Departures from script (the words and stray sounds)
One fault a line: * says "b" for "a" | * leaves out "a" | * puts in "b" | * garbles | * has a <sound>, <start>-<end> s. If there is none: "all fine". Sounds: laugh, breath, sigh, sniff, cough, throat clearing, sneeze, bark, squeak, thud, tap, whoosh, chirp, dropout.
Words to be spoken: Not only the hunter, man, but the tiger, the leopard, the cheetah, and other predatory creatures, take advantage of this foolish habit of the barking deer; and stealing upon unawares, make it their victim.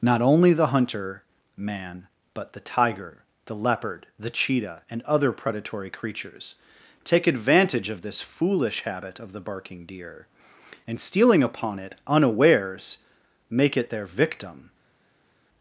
* puts in "it"